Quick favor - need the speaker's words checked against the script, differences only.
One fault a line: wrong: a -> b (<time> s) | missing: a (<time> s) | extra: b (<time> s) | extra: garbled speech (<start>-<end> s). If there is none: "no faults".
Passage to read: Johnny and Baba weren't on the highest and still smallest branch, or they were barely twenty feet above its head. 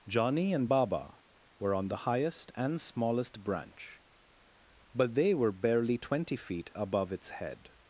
wrong: weren't -> were (1.6 s)
missing: still (2.8 s)
wrong: or -> but (4.9 s)